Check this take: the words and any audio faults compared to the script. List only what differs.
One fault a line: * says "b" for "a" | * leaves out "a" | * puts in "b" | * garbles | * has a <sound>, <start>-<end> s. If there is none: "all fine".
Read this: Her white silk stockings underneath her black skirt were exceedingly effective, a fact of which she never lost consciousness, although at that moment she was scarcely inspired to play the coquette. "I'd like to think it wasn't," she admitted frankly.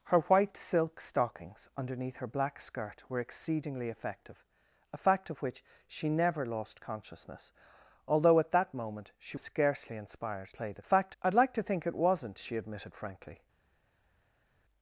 * leaves out "was"
* leaves out "to"
* says "fact" for "coquette"